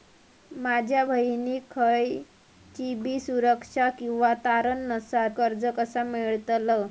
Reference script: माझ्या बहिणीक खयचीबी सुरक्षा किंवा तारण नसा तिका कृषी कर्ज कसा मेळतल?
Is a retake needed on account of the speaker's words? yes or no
yes